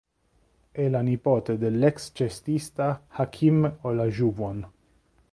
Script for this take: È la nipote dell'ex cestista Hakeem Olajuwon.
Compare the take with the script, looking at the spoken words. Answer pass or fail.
pass